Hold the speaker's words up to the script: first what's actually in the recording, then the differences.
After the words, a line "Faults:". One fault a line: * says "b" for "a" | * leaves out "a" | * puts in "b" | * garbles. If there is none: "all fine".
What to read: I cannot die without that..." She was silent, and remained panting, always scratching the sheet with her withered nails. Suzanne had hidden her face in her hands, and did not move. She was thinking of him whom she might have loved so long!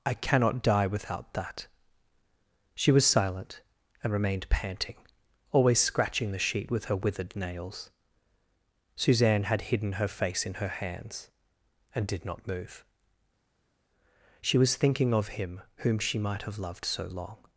I cannot die without that..." She was silent, and remained panting, always scratching the sheet with her withered nails. Suzanne had hidden her face in her hands, and did not move. She was thinking of him whom she might have loved so long!
Faults:
all fine